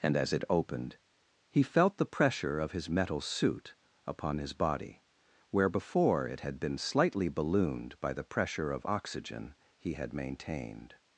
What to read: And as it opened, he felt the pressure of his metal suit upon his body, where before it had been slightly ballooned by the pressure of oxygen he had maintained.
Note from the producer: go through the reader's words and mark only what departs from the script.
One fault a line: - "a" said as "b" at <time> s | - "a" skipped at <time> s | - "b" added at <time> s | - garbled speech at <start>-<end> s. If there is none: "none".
none